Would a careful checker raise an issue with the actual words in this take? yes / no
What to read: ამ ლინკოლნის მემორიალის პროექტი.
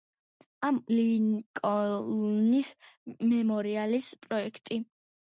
no